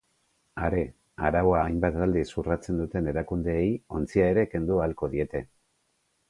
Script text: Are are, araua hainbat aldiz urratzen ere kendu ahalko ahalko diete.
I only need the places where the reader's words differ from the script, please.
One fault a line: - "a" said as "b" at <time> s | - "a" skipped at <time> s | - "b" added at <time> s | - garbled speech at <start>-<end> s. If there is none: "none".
- "are" skipped at 0.8 s
- "duten erakundeei ontzia" added at 2.8 s
- "ahalko" skipped at 5.1 s